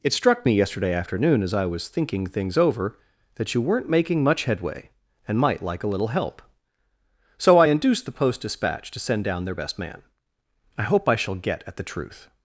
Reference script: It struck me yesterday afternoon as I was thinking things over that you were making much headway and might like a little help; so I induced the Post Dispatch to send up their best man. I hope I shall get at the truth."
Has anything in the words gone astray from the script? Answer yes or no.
yes